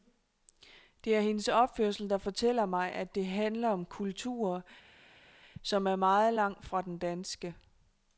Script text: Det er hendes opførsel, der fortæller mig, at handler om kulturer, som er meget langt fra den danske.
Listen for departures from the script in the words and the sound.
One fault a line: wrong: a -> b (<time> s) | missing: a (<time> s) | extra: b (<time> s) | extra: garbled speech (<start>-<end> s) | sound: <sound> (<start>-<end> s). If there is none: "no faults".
extra: det (3.1 s)